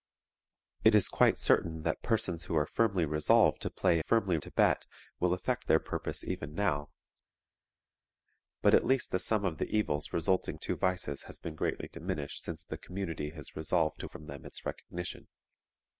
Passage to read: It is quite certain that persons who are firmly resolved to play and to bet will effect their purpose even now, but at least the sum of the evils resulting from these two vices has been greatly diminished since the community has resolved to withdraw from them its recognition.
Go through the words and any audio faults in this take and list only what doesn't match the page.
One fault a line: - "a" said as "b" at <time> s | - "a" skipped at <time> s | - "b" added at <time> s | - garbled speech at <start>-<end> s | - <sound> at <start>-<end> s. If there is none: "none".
- "and" said as "firmly" at 4.0 s
- "from these" skipped at 10.6 s
- "withdraw" skipped at 14.1 s